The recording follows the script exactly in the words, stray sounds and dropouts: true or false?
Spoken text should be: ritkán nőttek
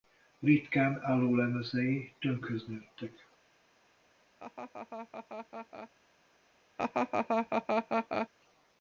false